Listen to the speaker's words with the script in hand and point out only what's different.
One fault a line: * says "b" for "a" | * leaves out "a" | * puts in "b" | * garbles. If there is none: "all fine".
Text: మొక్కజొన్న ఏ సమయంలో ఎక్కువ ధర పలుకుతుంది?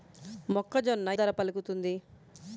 * leaves out "ఏ సమయంలో ఎక్కువ"